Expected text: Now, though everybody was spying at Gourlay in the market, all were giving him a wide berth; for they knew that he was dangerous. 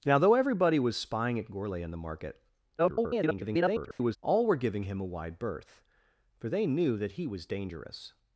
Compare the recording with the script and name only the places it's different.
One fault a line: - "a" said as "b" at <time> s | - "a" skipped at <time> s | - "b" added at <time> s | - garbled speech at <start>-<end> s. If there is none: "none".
- garbled speech at 2.8-4.2 s